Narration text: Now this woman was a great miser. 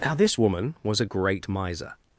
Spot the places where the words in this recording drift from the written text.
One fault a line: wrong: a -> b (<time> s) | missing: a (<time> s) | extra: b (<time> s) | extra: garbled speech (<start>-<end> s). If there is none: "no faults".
no faults